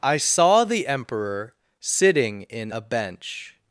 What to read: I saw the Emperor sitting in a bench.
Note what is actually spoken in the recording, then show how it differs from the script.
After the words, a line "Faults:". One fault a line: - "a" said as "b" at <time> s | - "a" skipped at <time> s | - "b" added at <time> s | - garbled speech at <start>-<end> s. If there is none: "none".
I saw the Emperor sitting in a bench.
Faults:
none